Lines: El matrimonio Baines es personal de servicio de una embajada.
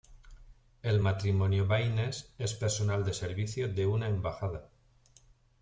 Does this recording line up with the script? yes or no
yes